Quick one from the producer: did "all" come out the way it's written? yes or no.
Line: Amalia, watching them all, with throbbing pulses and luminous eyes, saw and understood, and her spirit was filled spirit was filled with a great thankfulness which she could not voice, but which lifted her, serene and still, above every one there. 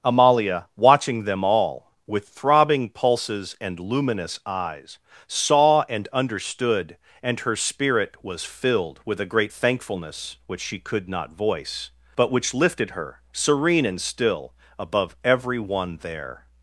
yes